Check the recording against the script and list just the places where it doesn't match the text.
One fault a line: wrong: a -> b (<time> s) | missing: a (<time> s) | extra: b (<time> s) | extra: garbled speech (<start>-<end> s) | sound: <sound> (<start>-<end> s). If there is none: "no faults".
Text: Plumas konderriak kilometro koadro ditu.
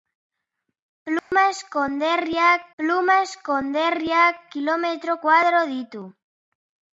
sound: dropout (1.2-1.3 s)
extra: plumas konderriak (2.8 s)